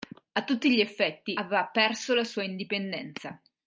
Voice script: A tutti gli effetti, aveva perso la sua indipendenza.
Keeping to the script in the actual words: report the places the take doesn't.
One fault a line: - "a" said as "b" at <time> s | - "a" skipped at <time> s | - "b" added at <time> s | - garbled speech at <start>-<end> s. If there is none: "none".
none